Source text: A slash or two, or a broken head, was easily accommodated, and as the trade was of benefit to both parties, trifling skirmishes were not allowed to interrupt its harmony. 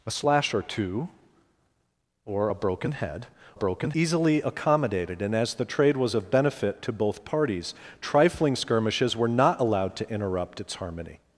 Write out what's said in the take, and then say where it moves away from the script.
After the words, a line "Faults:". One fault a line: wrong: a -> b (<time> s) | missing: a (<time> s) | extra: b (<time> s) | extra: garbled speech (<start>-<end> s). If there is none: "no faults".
A slash or two, or a broken head, broken easily accommodated, and as the trade was of benefit to both parties, trifling skirmishes were not allowed to interrupt its harmony.
Faults:
wrong: was -> broken (3.5 s)